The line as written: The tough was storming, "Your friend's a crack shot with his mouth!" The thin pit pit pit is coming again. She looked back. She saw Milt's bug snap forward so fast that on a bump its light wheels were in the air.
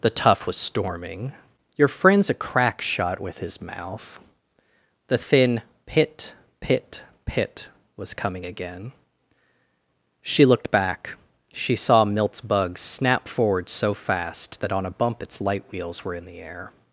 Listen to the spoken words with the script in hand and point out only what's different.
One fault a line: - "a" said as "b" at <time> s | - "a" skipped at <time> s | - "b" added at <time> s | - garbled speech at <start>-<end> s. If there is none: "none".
- "is" said as "was" at 8.0 s